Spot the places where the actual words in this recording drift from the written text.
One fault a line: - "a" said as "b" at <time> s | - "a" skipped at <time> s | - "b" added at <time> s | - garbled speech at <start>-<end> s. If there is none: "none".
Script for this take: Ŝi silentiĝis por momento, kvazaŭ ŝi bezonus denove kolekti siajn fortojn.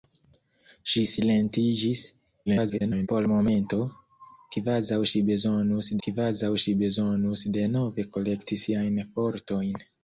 - garbled speech at 2.5-3.1 s
- "kvazaŭ ŝi bezonus" added at 6.1 s